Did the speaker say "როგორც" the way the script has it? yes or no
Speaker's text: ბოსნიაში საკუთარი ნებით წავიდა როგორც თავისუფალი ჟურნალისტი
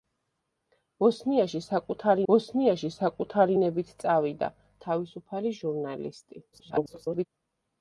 no